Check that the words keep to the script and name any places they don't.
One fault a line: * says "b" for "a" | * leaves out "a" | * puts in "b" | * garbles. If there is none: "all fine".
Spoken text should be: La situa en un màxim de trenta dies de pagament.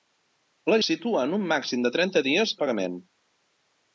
all fine